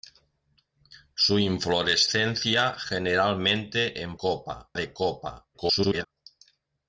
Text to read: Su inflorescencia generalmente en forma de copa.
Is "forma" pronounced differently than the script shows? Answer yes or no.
yes